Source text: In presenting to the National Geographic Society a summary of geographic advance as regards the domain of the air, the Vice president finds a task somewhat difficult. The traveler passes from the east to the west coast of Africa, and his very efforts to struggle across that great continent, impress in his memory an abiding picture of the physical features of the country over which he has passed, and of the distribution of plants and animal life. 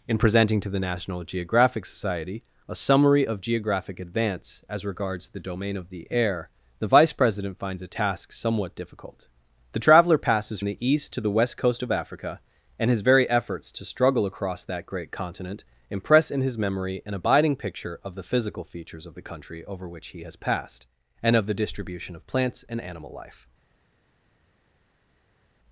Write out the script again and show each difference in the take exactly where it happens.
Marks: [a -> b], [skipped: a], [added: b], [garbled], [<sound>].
In presenting to the National Geographic Society a summary of geographic advance as regards the domain of the air, the Vice president finds a task somewhat difficult. The traveler passes [skipped: from] the east to the west coast of Africa, and his very efforts to struggle across that great continent, impress in his memory an abiding picture of the physical features of the country over which he has passed, and of the distribution of plants and animal life.